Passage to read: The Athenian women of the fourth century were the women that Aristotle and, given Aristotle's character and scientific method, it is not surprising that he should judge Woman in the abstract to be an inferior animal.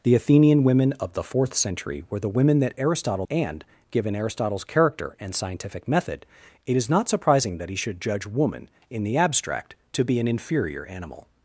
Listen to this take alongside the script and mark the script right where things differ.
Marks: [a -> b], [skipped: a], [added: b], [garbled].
The Athenian women of the fourth century were the women that Aristotle and, given Aristotle's character and scientific method, it is not surprising that he should judge Woman in the abstract to be an inferior animal.